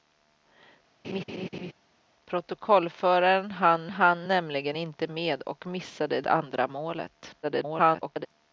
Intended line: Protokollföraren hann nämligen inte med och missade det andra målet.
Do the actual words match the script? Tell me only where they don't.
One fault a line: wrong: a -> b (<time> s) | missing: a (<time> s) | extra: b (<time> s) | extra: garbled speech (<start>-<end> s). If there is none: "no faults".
extra: hann (3.9 s)
missing: det (6.2 s)
extra: garbled speech (7.4-8.3 s)